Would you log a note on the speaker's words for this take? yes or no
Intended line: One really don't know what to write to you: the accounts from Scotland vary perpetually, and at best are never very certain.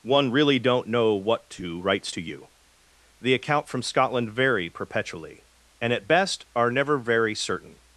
yes